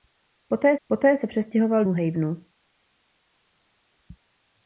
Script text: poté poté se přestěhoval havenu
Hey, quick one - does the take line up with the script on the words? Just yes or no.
yes